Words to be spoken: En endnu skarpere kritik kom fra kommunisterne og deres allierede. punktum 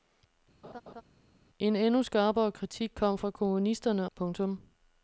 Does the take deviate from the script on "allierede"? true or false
true